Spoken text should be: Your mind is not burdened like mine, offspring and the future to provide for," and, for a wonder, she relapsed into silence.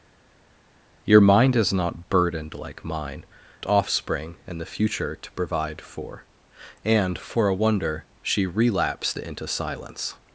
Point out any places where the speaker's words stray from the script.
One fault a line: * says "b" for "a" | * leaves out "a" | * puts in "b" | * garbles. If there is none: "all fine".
all fine